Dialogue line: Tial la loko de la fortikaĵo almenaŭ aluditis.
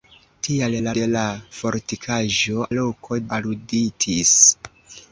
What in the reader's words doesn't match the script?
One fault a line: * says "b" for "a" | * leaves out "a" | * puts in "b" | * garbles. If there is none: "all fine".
* leaves out "loko"
* says "loko" for "almenaŭ"